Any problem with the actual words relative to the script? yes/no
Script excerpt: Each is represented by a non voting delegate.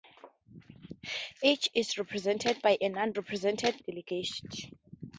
yes